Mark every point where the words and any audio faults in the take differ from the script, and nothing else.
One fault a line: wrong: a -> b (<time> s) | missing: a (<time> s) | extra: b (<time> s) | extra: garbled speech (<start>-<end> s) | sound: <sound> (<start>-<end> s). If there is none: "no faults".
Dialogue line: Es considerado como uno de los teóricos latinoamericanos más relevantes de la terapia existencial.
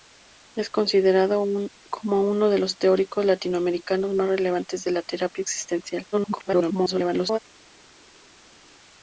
extra: garbled speech (6.1-7.4 s)